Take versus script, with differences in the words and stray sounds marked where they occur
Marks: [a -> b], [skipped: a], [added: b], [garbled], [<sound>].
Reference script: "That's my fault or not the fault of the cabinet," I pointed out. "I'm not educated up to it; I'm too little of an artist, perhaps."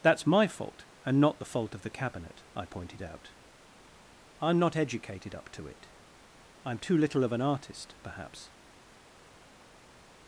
"That's my fault [or -> and] not the fault of the cabinet," I pointed out. "I'm not educated up to it; I'm too little of an artist, perhaps."